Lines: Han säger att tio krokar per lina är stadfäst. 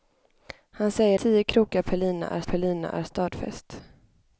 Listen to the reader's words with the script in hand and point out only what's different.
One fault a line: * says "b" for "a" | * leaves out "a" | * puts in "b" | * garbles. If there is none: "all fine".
* leaves out "att"
* puts in "per lina är"